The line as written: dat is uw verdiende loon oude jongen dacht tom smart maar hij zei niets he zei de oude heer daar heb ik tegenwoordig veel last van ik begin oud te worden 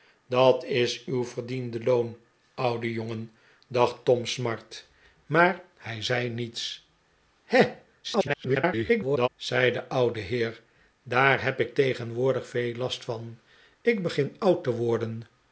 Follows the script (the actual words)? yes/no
no